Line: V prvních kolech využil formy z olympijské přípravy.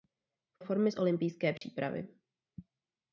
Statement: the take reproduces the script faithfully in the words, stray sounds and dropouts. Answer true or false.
false